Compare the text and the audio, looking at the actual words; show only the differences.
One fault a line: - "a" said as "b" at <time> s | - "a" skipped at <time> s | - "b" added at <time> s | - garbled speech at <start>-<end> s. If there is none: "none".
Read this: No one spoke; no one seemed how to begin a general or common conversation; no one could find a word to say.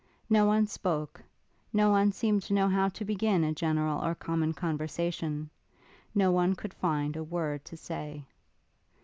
- "to know" added at 2.4 s